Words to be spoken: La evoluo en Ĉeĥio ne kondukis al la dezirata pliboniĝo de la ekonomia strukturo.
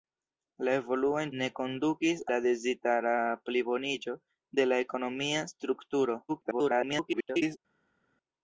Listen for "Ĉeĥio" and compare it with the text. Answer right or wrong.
wrong